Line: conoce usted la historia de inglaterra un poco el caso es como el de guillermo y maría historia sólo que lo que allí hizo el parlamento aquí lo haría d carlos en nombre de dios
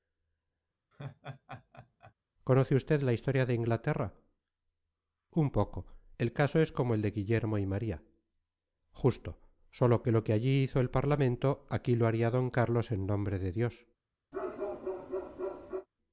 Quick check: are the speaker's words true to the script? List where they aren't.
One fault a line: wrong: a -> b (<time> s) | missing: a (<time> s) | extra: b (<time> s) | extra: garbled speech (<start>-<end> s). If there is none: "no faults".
wrong: historia -> justo (8.9 s)